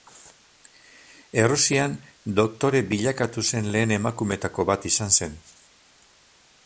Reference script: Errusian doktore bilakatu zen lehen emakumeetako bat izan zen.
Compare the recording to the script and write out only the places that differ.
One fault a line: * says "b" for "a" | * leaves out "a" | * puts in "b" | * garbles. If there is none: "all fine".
all fine